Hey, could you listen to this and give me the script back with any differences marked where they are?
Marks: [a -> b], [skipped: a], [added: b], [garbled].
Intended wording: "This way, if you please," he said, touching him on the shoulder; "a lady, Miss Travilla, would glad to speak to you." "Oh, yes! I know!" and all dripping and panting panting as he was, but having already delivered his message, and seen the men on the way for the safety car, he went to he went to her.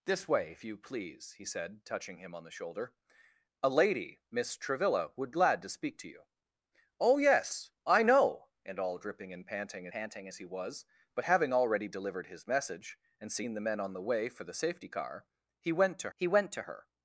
"This way, if you please," he said, touching him on the shoulder; "a lady, Miss Travilla, would glad to speak to you." "Oh, yes! I know!" and all dripping and panting panting as he was, but having already delivered his message, and seen the men on the way for the safety car, he went to he went to her.